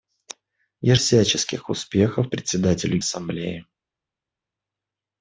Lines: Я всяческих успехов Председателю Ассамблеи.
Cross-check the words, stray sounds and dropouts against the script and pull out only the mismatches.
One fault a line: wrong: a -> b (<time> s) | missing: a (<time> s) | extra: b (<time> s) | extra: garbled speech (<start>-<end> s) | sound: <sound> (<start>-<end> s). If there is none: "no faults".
no faults